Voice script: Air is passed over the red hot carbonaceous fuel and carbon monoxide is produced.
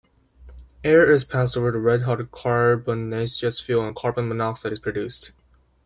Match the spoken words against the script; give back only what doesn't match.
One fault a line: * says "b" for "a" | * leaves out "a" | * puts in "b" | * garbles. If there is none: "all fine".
all fine